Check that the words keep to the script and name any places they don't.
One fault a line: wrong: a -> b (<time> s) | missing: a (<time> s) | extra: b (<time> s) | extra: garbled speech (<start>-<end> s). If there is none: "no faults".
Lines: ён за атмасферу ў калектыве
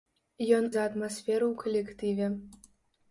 no faults